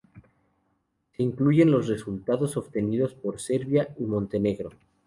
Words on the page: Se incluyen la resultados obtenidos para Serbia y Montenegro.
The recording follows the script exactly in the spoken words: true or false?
false